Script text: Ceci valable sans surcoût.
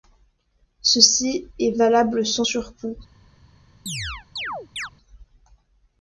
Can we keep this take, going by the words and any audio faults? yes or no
no